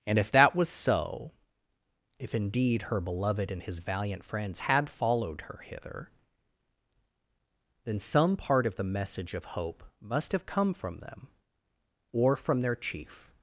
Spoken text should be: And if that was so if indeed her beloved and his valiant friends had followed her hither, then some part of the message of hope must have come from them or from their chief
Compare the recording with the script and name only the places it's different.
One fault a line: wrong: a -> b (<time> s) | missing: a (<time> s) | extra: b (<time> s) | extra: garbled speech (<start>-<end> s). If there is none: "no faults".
no faults